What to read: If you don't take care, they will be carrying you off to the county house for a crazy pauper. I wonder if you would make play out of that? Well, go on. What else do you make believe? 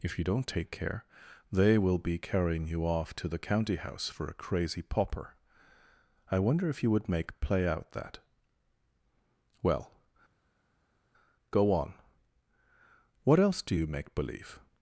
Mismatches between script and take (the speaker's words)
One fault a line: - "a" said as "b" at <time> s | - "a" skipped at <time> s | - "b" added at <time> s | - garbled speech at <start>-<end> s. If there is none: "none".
- "of" skipped at 7.9 s